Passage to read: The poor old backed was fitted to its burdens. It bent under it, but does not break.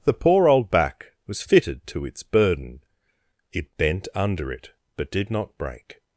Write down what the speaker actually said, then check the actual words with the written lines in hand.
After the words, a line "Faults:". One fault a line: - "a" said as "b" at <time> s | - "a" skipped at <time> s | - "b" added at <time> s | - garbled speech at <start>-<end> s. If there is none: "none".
The poor old back was fitted to its burden. It bent under it, but did not break.
Faults:
- "backed" said as "back" at 0.7 s
- "burdens" said as "burden" at 2.2 s
- "does" said as "did" at 5.1 s